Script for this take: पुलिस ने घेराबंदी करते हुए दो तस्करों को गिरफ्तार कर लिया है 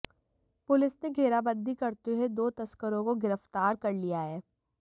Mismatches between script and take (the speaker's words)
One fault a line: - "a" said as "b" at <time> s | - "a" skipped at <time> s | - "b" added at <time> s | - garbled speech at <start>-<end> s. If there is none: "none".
none